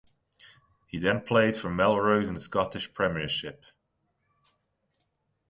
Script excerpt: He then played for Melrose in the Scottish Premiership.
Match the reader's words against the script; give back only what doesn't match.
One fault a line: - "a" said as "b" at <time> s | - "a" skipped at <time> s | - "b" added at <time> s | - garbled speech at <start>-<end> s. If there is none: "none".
none